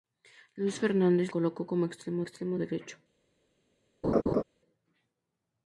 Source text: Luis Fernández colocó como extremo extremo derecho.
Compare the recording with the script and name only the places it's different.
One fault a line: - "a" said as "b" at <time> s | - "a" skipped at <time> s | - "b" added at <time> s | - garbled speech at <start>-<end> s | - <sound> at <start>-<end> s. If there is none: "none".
- laugh at 4.0-4.4 s